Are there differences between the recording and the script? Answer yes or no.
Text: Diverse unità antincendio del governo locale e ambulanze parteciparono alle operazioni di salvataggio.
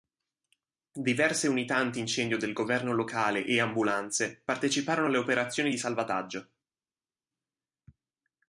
no